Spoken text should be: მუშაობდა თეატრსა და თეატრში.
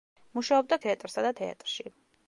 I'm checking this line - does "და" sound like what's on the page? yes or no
yes